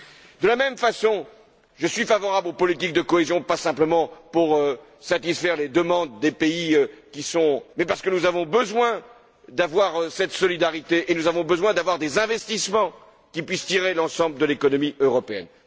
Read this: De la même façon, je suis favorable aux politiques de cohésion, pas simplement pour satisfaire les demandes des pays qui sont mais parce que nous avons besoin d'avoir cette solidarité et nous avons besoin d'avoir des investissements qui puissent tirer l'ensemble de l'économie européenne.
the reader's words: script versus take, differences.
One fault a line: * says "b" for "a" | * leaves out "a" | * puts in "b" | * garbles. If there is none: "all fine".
all fine